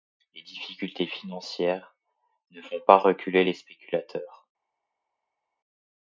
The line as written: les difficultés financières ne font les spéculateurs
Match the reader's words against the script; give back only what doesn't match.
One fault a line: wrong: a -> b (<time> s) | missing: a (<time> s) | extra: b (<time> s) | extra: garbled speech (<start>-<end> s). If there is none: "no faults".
extra: pas reculer (2.9 s)